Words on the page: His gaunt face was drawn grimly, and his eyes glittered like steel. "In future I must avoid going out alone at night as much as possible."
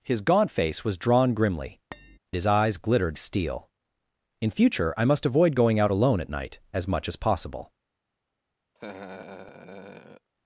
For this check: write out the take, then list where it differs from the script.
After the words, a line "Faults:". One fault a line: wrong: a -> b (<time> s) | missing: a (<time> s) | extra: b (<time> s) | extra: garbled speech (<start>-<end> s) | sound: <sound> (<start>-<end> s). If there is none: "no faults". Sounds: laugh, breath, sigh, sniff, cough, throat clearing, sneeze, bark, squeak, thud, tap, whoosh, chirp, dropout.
His gaunt face was drawn grimly, his eyes glittered steel. "In future I must avoid going out alone at night as much as possible."
Faults:
missing: and (1.8 s)
sound: tap (1.9-2.2 s)
missing: like (3.2 s)
sound: laugh (8.7-10.3 s)